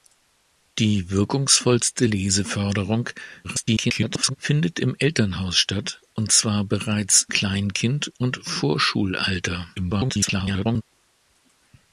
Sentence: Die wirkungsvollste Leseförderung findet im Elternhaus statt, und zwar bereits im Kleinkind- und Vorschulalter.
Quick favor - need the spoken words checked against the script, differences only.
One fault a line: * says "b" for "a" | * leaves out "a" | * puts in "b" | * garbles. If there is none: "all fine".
* garbles
* leaves out "im"
* garbles